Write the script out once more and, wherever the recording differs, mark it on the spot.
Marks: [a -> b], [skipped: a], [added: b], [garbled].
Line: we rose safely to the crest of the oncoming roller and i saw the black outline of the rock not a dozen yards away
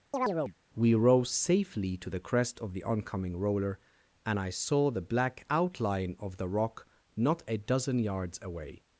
we rose safely to the crest of the oncoming roller and i saw the black outline of the rock not a dozen yards away